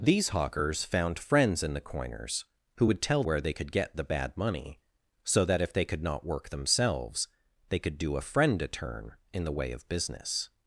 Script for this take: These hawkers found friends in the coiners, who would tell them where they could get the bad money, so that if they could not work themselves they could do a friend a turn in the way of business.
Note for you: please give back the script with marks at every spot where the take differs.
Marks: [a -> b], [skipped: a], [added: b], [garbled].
These hawkers found friends in the coiners, who would tell [skipped: them] where they could get the bad money, so that if they could not work themselves they could do a friend a turn in the way of business.